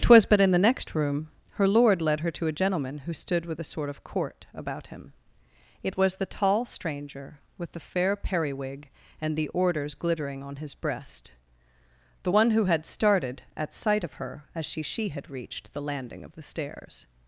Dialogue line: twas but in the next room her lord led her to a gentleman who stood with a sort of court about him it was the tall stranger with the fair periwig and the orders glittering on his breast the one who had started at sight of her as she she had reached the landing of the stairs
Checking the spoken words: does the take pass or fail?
pass